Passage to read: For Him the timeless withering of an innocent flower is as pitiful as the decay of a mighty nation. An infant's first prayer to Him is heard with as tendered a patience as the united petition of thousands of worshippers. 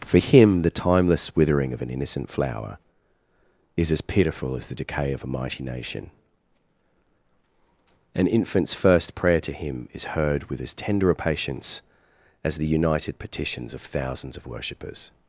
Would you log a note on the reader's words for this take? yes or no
yes